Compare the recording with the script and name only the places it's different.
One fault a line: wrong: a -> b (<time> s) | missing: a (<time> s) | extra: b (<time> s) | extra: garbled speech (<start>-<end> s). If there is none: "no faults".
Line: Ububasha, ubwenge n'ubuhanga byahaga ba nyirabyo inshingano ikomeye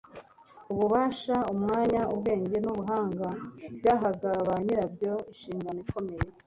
extra: umwanya (1.5 s)